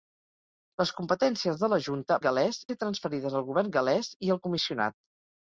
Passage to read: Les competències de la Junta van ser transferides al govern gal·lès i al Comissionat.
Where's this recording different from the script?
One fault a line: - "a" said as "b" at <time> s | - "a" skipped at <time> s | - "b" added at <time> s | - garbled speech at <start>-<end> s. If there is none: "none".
- "van" said as "gal·lès" at 2.3 s